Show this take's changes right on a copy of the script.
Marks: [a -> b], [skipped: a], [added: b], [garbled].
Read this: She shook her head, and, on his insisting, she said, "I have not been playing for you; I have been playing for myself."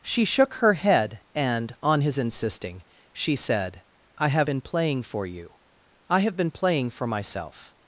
She shook her head, and, on his insisting, she said, "I have [skipped: not] been playing for you; I have been playing for myself."